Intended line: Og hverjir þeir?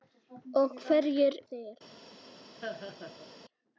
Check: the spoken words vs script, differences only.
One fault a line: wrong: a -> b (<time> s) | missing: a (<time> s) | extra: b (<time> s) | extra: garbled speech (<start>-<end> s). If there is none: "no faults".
no faults